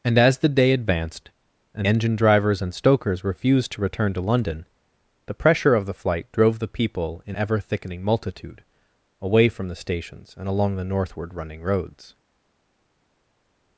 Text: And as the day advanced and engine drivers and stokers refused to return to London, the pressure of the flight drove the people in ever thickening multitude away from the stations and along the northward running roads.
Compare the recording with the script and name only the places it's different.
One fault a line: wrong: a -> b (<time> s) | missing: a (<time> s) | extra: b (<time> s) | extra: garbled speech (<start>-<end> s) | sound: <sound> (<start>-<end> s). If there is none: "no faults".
no faults